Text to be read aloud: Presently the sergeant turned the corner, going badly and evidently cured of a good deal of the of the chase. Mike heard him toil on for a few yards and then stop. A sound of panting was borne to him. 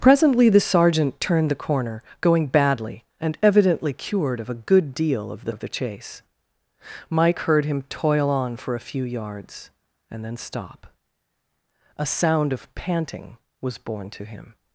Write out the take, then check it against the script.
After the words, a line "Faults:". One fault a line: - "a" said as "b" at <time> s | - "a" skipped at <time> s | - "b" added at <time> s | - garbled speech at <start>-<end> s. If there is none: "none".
Presently the sergeant turned the corner, going badly and evidently cured of a good deal of the of the chase. Mike heard him toil on for a few yards and then stop. A sound of panting was borne to him.
Faults:
none